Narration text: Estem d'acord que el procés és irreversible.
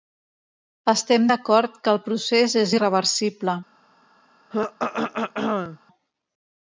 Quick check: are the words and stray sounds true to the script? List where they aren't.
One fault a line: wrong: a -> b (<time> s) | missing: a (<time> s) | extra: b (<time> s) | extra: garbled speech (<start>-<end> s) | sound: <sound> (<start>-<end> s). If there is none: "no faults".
sound: throat clearing (4.5-5.8 s)